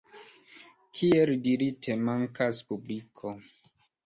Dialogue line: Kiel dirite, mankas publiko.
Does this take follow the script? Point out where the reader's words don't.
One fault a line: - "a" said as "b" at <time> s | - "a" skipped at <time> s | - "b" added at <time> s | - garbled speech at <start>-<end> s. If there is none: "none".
none